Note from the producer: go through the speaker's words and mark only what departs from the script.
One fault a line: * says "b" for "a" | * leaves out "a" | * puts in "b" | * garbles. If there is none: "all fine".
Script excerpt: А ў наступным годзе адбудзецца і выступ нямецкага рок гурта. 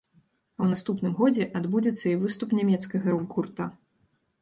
all fine